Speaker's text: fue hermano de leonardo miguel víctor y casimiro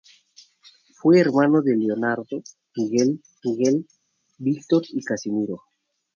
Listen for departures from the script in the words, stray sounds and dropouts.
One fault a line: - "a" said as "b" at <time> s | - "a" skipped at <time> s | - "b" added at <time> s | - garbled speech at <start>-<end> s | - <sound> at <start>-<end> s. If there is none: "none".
- "miguel" added at 3.4 s